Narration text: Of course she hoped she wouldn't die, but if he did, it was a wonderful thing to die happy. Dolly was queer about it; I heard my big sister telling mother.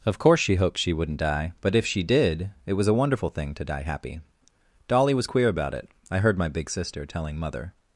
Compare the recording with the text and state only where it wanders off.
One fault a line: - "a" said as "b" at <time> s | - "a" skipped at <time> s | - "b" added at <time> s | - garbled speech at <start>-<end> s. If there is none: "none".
- "he" said as "she" at 1.9 s